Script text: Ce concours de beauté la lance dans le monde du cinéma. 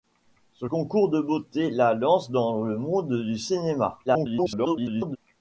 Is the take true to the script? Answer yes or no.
no